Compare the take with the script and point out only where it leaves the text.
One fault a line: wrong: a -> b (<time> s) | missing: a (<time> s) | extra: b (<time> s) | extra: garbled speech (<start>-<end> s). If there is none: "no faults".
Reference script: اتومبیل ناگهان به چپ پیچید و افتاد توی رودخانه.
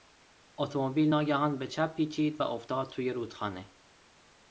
no faults